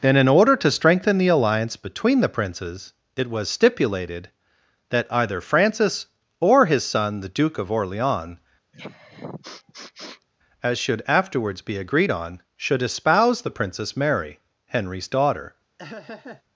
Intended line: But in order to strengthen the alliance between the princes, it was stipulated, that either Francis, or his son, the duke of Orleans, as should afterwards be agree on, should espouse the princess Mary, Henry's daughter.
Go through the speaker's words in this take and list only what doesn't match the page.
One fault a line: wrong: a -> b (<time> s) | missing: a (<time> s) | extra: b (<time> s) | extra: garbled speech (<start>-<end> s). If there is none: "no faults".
wrong: But -> And (0.0 s)
wrong: agree -> agreed (11.8 s)